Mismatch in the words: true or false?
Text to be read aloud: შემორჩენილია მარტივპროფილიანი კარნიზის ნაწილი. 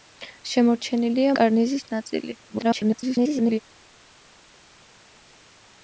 true